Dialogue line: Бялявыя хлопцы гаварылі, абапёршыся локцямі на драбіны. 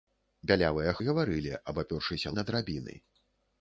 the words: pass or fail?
fail